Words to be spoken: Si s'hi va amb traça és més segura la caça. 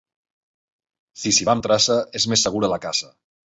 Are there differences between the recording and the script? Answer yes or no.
no